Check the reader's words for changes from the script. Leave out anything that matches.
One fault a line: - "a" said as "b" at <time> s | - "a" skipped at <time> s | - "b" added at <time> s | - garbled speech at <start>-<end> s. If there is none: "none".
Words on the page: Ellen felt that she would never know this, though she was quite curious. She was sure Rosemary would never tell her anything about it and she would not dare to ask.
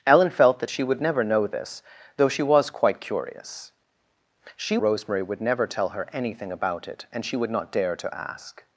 - "was sure" skipped at 4.8 s